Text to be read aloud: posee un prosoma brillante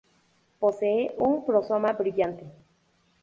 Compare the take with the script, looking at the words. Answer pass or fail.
pass